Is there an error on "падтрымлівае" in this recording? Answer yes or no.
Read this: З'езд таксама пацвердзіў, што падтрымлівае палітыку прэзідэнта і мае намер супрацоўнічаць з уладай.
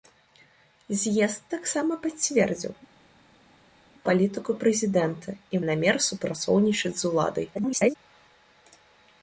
yes